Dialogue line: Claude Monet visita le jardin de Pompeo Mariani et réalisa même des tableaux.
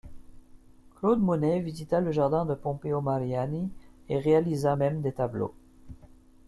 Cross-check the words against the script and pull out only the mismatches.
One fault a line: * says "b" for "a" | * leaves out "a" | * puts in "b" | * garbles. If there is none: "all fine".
all fine